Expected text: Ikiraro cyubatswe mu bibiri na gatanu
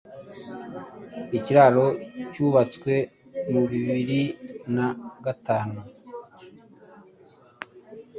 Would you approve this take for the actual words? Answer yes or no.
yes